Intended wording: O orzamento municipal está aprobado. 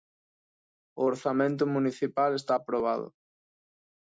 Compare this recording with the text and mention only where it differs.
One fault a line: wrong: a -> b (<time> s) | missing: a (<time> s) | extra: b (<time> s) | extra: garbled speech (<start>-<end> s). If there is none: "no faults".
no faults